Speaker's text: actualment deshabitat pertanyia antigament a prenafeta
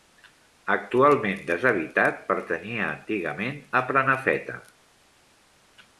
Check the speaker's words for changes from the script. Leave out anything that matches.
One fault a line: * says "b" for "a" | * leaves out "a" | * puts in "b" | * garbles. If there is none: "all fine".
all fine